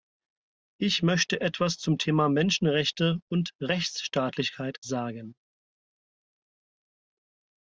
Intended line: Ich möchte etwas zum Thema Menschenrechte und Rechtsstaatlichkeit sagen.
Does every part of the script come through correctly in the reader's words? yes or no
yes